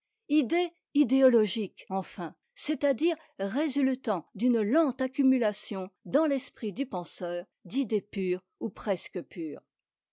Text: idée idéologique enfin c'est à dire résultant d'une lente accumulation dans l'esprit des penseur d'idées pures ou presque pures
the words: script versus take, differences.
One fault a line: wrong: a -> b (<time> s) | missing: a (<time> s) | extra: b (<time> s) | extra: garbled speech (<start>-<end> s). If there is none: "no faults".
wrong: des -> du (6.7 s)